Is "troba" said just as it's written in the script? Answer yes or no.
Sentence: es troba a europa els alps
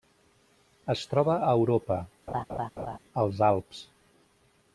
yes